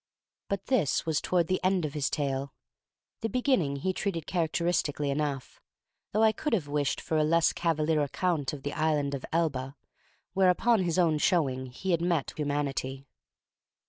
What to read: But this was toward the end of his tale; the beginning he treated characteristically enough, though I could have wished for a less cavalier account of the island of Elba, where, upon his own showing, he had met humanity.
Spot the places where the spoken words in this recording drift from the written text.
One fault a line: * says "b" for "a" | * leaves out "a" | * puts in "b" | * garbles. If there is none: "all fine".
all fine